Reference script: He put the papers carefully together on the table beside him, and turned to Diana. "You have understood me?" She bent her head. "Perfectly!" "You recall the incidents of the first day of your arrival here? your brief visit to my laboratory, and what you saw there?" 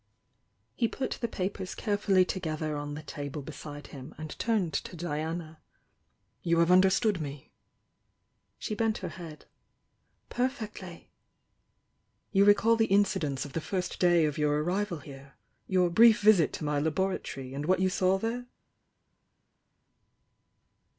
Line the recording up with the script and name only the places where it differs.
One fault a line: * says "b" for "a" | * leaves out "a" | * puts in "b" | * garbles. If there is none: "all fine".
all fine